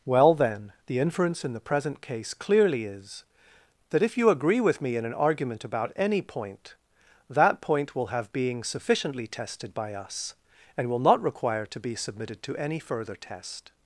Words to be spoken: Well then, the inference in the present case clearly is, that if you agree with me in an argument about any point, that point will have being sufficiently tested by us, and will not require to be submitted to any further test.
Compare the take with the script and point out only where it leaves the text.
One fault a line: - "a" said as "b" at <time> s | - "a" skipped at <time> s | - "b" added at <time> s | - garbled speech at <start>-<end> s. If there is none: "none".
none